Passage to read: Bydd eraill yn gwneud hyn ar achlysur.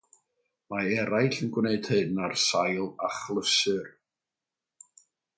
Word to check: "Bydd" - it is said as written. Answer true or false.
false